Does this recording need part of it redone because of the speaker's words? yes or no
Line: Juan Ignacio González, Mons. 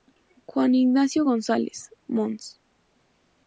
no